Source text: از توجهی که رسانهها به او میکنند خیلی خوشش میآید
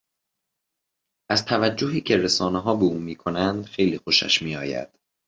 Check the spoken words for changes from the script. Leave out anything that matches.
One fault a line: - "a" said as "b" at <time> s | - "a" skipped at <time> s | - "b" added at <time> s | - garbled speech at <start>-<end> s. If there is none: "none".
none